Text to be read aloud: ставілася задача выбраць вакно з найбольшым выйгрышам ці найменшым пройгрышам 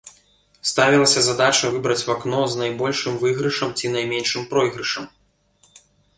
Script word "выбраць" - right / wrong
right